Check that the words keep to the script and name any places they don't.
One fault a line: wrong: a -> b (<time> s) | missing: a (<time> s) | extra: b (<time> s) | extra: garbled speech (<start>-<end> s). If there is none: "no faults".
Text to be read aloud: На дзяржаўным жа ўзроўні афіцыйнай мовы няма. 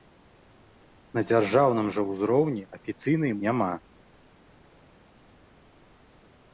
missing: мовы (3.3 s)